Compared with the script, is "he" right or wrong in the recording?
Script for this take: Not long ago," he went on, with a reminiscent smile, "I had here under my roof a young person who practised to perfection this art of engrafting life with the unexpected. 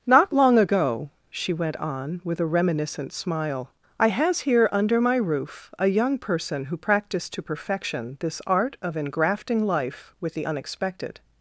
wrong